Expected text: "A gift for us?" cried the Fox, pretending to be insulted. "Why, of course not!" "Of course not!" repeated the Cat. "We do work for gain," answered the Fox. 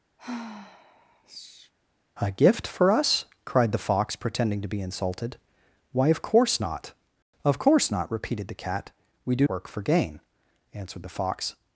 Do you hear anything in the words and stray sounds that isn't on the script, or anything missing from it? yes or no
yes